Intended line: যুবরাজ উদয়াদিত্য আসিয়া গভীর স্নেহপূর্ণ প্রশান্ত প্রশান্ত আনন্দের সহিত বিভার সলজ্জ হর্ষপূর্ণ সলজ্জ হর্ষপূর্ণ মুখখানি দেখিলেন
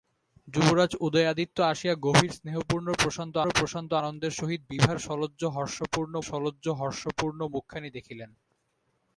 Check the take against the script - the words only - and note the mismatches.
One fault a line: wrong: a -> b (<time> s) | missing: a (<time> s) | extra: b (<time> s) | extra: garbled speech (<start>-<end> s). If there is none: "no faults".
no faults